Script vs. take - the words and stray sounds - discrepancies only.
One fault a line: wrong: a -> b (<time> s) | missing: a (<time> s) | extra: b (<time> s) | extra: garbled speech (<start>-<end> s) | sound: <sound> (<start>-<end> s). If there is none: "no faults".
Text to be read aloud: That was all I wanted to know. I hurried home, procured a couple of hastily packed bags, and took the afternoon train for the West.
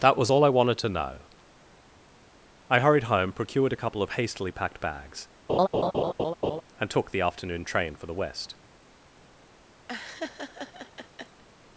sound: laugh (5.5-6.6 s)
sound: laugh (9.9-11.4 s)